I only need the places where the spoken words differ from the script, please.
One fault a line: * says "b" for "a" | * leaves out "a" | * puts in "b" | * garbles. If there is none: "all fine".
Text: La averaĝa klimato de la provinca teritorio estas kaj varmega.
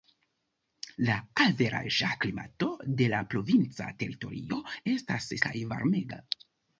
all fine